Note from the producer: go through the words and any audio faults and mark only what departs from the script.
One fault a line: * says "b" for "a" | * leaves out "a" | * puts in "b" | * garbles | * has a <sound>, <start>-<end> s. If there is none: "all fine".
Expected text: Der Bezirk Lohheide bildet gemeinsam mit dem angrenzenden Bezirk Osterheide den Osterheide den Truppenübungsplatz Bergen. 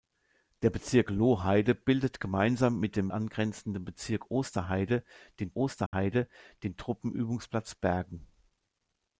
* has a dropout, 5.9-5.9 s